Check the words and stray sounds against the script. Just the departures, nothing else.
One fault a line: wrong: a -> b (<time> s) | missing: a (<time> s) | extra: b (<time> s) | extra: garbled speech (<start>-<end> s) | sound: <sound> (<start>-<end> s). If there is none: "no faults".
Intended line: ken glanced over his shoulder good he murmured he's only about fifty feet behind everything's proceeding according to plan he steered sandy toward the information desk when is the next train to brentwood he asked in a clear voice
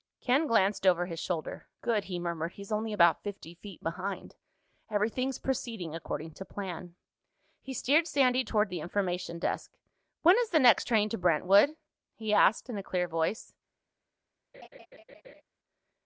sound: laugh (14.5-15.4 s)